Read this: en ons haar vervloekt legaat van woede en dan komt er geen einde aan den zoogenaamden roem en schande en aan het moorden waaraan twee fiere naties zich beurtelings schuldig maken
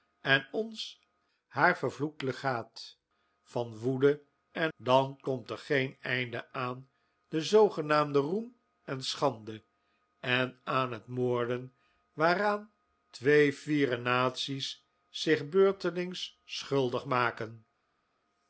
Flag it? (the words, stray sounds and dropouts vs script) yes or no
no